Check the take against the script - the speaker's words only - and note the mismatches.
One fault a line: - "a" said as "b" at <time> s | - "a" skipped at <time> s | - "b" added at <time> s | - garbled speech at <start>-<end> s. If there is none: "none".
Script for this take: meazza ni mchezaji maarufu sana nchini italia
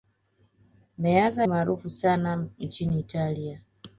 - "ni mchezaji" skipped at 1.5 s